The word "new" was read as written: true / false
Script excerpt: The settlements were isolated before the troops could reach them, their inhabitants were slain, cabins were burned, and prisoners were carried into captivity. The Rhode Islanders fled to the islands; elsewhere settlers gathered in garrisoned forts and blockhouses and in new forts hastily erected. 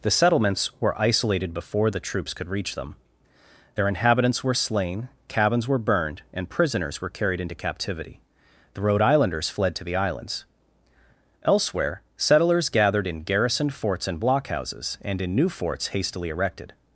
true